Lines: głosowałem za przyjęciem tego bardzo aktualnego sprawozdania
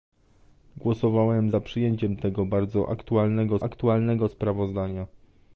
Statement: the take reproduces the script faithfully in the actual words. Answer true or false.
false